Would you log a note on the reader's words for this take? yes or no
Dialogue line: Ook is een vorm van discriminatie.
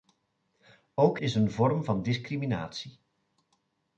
no